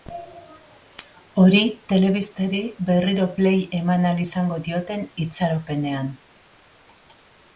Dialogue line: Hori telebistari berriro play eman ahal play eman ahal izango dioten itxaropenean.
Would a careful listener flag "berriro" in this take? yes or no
no